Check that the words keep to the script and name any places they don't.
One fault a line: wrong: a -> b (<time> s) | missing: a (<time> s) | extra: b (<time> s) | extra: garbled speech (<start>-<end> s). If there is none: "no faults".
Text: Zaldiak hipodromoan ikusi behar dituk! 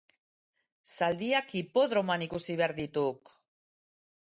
no faults